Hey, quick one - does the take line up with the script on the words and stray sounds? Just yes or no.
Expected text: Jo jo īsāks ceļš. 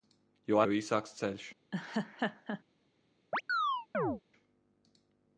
no